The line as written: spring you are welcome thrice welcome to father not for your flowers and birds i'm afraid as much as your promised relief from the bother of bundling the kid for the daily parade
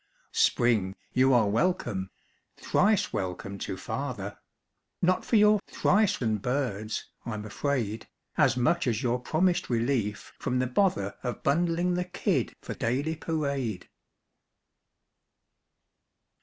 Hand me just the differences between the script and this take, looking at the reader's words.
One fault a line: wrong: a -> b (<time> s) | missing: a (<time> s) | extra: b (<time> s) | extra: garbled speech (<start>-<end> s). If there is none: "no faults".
wrong: flowers -> thrice (5.7 s)
missing: the (12.7 s)